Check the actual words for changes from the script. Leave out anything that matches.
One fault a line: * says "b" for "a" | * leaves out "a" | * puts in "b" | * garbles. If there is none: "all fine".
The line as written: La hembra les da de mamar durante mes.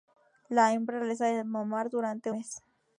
all fine